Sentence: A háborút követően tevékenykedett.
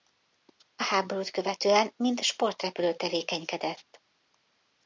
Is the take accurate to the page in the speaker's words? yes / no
no